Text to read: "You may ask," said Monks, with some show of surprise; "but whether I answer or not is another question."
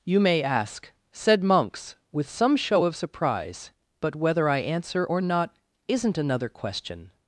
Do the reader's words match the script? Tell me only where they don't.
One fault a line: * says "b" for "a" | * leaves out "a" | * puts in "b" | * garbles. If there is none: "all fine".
* says "isn't" for "is"